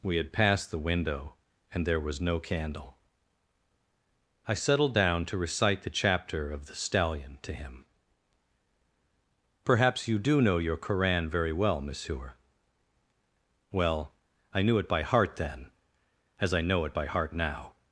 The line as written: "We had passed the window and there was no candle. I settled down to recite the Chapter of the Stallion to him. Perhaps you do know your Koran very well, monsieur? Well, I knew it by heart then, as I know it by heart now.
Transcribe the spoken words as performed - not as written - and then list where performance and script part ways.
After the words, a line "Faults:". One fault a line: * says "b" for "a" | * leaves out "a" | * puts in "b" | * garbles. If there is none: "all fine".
"We had passed the window and there was no candle. I settled down to recite the Chapter of the Stallion to him. Perhaps you do know your Koran very well, monsieur? Well, I knew it by heart then, as I know it by heart now.
Faults:
all fine